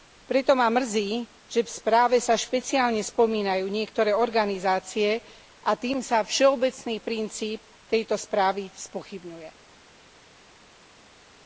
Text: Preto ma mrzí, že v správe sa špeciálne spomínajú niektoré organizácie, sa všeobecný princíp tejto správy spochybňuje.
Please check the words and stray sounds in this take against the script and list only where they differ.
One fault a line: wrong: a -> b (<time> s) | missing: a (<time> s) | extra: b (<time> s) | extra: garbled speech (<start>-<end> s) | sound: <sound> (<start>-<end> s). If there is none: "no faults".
extra: a tým (5.6 s)